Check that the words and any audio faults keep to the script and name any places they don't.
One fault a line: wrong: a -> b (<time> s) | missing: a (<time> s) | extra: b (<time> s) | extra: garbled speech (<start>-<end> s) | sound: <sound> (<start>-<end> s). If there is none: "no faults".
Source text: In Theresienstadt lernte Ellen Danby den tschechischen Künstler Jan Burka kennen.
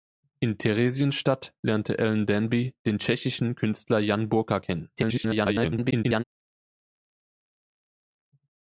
extra: garbled speech (5.0-6.2 s)